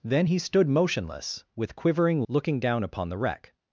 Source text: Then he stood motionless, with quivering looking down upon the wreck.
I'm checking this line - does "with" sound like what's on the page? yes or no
yes